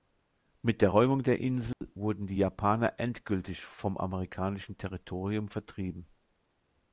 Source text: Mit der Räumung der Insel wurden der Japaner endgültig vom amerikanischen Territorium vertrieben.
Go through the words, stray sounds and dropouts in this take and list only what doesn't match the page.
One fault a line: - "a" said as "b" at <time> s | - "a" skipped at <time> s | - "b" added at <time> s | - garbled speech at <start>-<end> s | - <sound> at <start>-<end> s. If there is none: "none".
- dropout at 1.7-1.8 s
- "der" said as "die" at 2.3 s